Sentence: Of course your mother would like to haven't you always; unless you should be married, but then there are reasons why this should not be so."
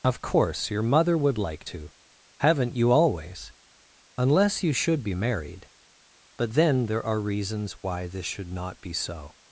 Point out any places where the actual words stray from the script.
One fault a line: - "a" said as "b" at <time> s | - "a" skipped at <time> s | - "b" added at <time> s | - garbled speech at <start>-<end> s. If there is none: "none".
none